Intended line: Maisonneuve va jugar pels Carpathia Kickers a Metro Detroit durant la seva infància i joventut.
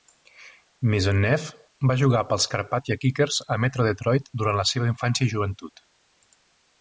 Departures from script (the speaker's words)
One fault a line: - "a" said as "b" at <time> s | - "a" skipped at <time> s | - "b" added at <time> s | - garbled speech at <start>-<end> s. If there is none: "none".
none